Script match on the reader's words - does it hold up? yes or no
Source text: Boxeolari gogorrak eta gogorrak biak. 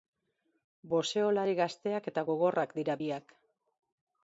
no